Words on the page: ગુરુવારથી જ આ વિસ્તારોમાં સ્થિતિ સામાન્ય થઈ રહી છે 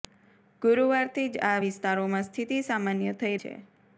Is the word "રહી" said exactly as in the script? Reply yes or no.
no